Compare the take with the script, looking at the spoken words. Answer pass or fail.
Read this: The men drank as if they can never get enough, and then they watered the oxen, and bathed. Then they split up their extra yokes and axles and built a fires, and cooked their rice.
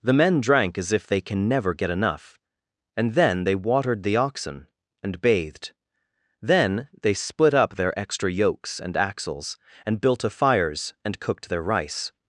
pass